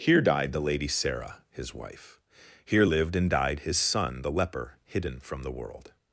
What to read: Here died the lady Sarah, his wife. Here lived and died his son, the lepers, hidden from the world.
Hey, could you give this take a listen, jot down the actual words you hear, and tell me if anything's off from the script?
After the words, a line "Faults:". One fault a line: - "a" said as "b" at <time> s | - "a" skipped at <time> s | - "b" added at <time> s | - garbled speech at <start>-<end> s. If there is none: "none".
Here died the lady Sarah, his wife. Here lived and died his son, the leper, hidden from the world.
Faults:
- "lepers" said as "leper" at 4.3 s